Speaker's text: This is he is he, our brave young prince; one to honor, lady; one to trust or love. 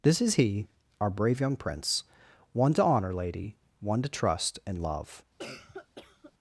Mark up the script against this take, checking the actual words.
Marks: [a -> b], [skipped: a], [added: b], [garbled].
This is he [skipped: is he,] our brave young prince; one to honor, lady; one to trust [or -> and] love.